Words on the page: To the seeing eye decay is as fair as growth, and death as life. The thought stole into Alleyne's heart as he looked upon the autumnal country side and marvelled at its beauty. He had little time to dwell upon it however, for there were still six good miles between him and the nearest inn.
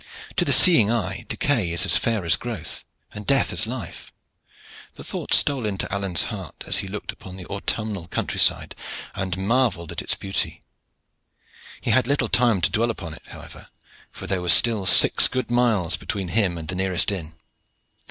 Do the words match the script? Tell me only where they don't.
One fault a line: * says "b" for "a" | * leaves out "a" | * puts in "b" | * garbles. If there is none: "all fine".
all fine